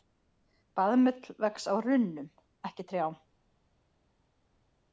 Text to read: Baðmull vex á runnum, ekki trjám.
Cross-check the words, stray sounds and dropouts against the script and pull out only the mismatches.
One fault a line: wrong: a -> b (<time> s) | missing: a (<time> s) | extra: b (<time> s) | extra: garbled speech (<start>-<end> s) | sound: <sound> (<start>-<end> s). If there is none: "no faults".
no faults